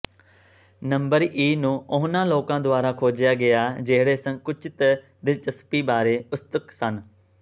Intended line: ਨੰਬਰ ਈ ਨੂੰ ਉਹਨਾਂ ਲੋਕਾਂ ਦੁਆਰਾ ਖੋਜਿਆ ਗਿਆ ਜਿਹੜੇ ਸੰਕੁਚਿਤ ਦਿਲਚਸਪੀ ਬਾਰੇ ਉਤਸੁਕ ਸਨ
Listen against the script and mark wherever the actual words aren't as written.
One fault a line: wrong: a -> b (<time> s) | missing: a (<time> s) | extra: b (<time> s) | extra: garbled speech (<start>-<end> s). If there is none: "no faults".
no faults